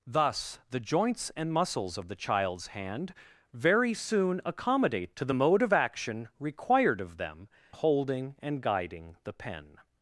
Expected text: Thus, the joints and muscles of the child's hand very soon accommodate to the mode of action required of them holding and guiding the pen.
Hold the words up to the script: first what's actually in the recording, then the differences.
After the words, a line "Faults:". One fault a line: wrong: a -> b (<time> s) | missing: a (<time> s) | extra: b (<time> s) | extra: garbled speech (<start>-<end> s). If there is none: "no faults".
Thus, the joints and muscles of the child's hand very soon accommodate to the mode of action required of them holding and guiding the pen.
Faults:
no faults